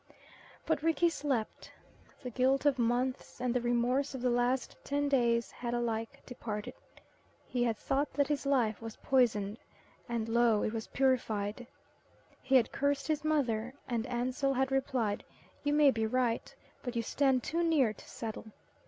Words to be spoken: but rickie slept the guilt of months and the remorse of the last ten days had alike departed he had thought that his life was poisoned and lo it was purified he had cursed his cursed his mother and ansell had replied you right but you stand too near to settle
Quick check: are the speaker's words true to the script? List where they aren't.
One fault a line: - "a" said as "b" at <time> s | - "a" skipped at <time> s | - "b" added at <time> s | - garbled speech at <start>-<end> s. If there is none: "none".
- "cursed his" skipped at 13.2 s
- "may be" added at 15.7 s